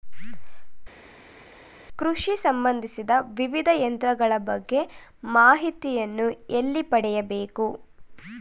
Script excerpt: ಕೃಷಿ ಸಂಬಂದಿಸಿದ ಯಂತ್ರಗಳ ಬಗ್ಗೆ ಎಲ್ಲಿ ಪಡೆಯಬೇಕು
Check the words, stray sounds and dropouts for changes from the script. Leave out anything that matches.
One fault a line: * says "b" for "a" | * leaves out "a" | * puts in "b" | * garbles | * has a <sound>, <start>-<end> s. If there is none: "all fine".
* puts in "ವಿವಿಧ"
* puts in "ಮಾಹಿತಿಯನ್ನು"